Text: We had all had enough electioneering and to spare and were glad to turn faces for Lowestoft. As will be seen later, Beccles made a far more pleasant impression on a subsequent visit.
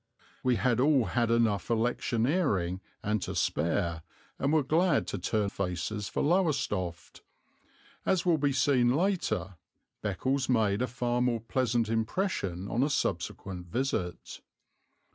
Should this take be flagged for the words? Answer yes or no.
no